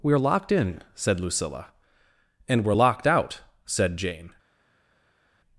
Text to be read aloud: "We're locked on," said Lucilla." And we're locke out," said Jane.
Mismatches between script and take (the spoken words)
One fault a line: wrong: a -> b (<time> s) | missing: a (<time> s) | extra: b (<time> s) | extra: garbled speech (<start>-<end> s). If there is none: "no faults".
wrong: on -> in (0.5 s)
wrong: locke -> locked (2.7 s)